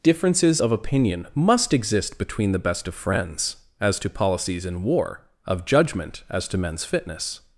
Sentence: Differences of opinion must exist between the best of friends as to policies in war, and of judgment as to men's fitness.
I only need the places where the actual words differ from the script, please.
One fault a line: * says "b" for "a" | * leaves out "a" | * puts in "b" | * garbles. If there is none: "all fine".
* leaves out "and"